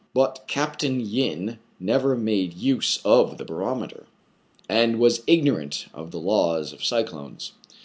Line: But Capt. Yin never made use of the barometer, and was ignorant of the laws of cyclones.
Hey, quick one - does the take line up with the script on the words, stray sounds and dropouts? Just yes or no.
yes